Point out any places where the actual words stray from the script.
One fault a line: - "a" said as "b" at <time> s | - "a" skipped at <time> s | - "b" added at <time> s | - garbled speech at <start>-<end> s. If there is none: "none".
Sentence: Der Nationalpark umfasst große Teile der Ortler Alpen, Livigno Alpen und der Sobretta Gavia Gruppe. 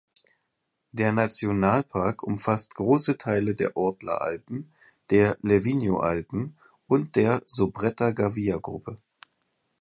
- "der" added at 5.1 s